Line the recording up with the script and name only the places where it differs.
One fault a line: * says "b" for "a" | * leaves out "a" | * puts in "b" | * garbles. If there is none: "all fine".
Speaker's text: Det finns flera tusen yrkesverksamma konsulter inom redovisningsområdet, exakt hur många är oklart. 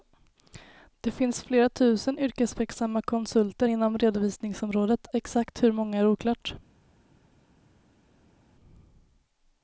all fine